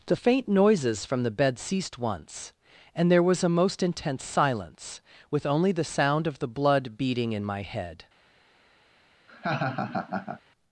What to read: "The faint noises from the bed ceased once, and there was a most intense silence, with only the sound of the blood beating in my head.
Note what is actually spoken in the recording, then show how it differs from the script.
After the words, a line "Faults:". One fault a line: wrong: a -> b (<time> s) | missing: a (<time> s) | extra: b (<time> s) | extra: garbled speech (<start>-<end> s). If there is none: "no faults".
"The faint noises from the bed ceased once, and there was a most intense silence, with only the sound of the blood beating in my head.
Faults:
no faults